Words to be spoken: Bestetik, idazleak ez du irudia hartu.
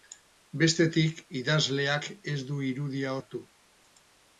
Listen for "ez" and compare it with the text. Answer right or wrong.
right